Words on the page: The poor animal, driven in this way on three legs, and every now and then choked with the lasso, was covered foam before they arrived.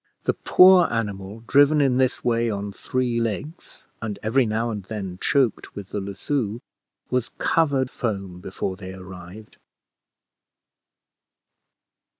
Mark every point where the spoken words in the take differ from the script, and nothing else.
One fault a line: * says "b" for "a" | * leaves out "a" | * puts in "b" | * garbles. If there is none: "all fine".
all fine